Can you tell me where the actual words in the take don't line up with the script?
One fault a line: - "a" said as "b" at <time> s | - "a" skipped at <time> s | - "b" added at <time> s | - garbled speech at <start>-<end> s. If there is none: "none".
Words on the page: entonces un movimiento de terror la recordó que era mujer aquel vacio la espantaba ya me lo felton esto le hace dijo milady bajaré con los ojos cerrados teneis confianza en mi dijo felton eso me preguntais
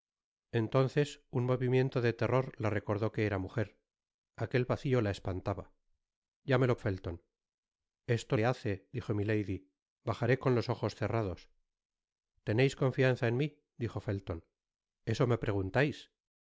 none